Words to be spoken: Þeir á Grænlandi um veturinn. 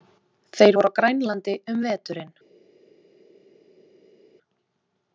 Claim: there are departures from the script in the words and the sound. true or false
true